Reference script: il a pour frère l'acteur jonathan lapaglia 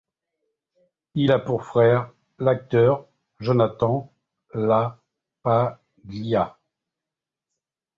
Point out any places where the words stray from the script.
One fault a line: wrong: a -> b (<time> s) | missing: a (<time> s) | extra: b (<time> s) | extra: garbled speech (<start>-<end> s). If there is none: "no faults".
no faults